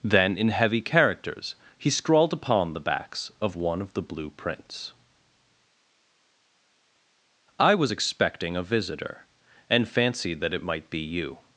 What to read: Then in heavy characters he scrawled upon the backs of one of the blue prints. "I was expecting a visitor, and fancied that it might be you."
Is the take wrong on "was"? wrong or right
right